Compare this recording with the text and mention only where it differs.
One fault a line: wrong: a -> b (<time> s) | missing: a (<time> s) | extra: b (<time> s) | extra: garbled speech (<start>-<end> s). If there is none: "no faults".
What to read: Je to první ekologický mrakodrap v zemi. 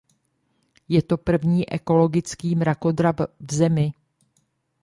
no faults